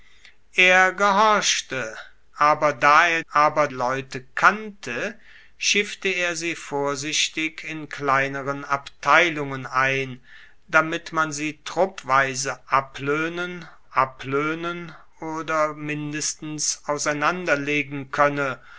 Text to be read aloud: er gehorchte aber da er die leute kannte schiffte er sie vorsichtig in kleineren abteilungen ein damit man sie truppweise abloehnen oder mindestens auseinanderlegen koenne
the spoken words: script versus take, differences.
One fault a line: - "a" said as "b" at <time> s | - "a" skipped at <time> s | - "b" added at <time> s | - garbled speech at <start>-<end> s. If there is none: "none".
- "die" said as "aber" at 3.3 s
- "abloehnen" added at 13.9 s